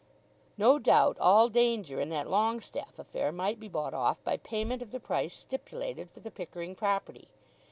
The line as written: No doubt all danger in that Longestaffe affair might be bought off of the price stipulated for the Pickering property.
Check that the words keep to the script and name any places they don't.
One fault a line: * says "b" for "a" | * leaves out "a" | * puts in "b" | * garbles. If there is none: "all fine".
* puts in "by payment"